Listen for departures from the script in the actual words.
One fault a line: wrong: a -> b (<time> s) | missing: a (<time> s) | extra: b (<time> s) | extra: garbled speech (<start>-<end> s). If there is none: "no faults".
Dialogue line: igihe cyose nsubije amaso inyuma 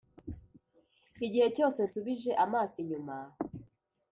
no faults